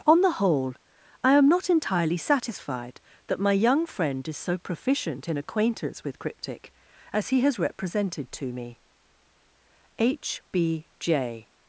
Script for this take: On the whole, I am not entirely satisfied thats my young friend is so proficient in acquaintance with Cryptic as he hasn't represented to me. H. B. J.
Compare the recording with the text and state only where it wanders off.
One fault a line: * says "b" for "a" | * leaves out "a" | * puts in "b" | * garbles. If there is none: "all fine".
* says "that" for "thats"
* says "has" for "hasn't"